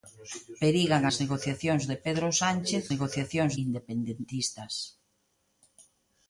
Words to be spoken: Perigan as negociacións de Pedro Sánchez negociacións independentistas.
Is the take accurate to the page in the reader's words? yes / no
yes